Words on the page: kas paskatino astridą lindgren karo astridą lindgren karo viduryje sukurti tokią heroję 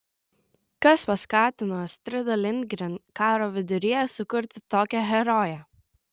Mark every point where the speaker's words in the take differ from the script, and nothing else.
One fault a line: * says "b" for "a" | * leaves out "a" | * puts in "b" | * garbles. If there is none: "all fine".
* leaves out "astridą lindgren karo"